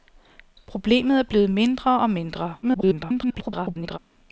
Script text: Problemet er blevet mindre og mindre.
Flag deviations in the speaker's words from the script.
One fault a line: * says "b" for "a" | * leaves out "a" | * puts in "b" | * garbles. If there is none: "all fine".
* garbles